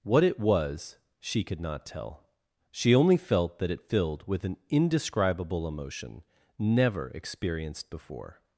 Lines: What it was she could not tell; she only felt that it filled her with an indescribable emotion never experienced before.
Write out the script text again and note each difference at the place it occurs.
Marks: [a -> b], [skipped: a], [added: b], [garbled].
What it was she could not tell; she only felt that it filled [skipped: her] with an indescribable emotion never experienced before.